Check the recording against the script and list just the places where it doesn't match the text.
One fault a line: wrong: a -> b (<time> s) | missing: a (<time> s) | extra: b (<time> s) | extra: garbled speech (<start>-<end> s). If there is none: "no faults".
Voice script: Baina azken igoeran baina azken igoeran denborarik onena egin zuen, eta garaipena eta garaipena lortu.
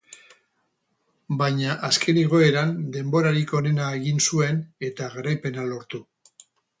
missing: baina azken igoeran (2.7 s)
missing: eta garaipena (5.7 s)